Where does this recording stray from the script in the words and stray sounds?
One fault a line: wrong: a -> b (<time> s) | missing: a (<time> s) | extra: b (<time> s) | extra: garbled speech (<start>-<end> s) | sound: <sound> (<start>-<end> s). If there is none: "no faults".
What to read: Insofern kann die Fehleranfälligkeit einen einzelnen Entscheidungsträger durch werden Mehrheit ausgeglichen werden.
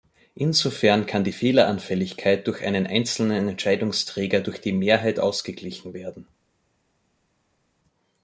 extra: durch (2.5 s)
wrong: werden -> die (4.6 s)